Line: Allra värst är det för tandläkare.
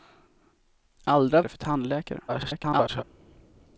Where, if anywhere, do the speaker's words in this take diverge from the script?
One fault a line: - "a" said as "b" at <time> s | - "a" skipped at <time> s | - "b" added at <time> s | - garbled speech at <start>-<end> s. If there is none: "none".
- "värst är" skipped at 1.4 s
- garbled speech at 2.3-3.0 s